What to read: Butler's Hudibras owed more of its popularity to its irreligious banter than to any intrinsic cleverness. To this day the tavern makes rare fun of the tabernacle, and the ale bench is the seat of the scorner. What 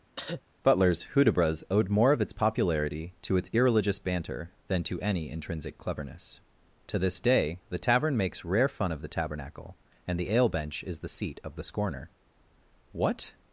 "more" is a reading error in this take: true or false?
false